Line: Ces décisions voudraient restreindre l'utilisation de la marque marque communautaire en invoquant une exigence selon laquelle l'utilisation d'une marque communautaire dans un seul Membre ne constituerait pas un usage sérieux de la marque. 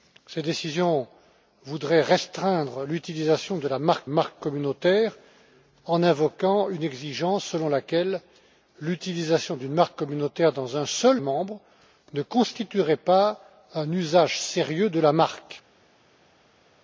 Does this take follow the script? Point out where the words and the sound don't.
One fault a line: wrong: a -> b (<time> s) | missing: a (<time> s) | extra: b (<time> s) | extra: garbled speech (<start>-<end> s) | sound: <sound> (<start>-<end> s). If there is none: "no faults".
no faults